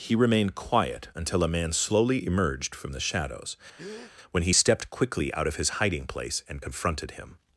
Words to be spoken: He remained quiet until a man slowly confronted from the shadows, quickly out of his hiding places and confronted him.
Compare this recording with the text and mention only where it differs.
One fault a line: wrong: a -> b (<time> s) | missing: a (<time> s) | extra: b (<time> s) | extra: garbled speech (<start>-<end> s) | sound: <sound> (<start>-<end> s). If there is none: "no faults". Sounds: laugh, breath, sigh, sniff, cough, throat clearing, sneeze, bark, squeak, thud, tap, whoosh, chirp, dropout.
wrong: confronted -> emerged (2.3 s)
sound: breath (3.8-4.1 s)
extra: when he stepped (4.3 s)
wrong: places -> place (6.0 s)